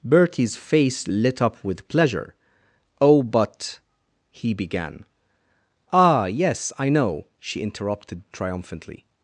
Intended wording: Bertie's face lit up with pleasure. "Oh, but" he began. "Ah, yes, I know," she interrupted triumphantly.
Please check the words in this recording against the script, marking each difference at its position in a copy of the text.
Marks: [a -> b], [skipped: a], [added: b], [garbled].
Bertie's face lit up with pleasure. "Oh, but" he began. "Ah, yes, I know," she interrupted triumphantly.